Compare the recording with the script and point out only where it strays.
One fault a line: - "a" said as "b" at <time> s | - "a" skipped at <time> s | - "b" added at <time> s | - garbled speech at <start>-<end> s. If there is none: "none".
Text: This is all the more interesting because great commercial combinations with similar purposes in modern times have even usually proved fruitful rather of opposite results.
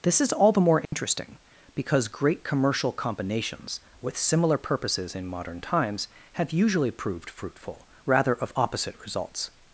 - "even" skipped at 6.5 s